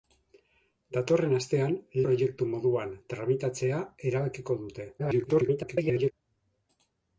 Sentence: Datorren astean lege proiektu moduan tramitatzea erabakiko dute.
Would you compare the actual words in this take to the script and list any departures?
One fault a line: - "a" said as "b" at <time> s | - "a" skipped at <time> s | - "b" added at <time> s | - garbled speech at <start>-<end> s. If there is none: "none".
- "lege" skipped at 1.8 s
- garbled speech at 5.0-6.1 s